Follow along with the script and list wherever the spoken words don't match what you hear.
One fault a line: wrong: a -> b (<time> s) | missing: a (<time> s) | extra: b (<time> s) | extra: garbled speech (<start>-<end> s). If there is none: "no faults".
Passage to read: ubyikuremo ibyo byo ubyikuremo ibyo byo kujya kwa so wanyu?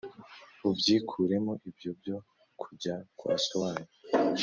missing: ubyikuremo ibyo byo (2.2 s)